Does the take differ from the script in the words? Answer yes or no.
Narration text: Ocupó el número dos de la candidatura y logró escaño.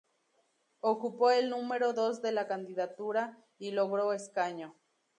no